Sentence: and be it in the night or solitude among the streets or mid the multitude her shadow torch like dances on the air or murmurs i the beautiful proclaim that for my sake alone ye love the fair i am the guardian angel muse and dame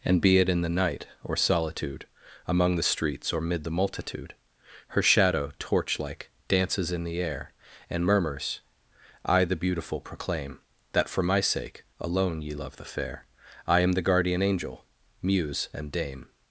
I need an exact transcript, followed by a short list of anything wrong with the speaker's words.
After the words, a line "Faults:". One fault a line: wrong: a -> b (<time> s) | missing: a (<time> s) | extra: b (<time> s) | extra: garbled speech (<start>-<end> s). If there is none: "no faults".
and be it in the night or solitude among the streets or mid the multitude her shadow torch like dances in the air and murmurs i the beautiful proclaim that for my sake alone ye love the fair i am the guardian angel muse and dame
Faults:
wrong: on -> in (6.9 s)
wrong: or -> and (7.9 s)